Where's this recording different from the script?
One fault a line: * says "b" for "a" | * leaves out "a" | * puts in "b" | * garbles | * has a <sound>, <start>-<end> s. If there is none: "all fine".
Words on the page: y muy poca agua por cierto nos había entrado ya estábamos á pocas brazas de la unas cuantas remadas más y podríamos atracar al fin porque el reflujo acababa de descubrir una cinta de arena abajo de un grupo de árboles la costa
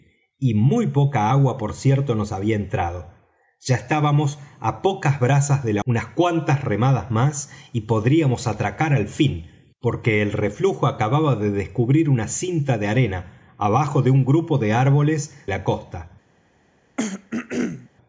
* has a throat clearing, 17.0-17.9 s